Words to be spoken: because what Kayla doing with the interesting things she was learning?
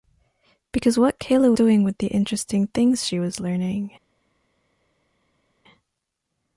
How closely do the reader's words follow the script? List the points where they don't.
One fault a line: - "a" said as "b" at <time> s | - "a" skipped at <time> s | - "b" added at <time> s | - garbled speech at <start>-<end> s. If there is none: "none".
none